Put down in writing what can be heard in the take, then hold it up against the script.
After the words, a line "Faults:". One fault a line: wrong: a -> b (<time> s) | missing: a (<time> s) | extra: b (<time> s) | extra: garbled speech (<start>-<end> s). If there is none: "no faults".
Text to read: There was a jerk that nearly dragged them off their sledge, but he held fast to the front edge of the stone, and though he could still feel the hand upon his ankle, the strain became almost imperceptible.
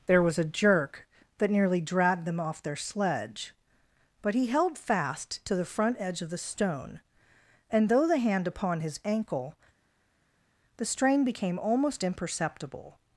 There was a jerk that nearly dragged them off their sledge, but he held fast to the front edge of the stone, and though the hand upon his ankle, the strain became almost imperceptible.
Faults:
missing: he could still feel (8.1 s)